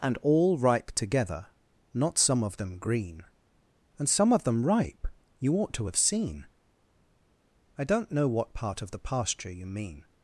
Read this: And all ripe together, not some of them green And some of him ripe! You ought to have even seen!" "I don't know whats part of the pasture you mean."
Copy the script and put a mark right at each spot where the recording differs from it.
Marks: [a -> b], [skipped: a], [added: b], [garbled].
And all ripe together, not some of them green And some of [him -> them] ripe! You ought to have [skipped: even] seen!" "I don't know [whats -> what] part of the pasture you mean."